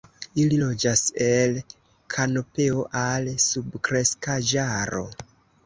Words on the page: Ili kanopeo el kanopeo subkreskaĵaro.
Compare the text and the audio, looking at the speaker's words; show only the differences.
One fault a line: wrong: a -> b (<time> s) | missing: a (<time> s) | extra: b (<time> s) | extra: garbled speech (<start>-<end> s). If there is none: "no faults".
wrong: kanopeo -> loĝas (0.6 s)
extra: al (3.0 s)